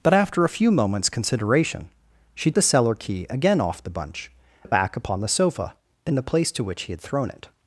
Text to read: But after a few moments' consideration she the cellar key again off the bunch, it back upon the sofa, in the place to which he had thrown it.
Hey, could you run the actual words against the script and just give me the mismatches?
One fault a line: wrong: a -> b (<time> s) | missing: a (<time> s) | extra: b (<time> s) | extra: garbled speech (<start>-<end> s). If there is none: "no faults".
no faults